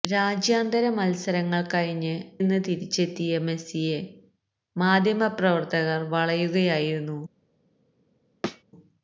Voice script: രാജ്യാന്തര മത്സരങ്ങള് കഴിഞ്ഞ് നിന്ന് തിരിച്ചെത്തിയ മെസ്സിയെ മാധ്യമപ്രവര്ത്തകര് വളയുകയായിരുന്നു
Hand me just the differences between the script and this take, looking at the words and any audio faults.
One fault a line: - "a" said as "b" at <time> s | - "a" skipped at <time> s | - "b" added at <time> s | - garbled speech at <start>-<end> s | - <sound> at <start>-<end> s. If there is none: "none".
- thud at 8.4-8.6 s